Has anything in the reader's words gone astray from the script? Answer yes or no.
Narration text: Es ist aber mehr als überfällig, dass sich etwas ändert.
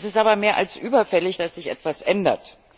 no